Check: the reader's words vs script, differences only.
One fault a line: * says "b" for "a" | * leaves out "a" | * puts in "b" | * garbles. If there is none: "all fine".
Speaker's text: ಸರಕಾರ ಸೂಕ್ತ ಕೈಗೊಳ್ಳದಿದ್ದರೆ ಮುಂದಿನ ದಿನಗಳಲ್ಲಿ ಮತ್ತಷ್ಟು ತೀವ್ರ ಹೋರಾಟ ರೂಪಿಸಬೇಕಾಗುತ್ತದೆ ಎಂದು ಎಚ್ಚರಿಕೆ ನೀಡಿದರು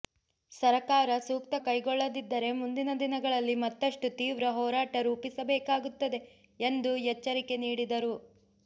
all fine